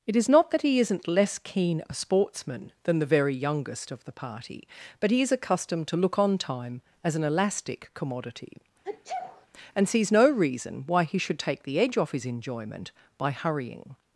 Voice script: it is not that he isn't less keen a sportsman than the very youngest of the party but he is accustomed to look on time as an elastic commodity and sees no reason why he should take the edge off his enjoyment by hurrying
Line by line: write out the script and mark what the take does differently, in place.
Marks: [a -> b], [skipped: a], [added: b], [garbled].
it is not that he isn't less keen a sportsman than the very youngest of the party but he is accustomed to look on time as an elastic commodity and sees no reason why he should take the edge off his enjoyment by hurrying